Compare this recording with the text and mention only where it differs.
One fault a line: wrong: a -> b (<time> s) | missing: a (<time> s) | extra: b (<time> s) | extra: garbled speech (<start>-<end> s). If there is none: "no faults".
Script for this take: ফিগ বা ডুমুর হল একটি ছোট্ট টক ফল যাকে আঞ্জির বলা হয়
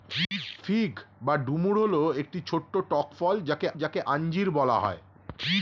extra: যাকে (3.7 s)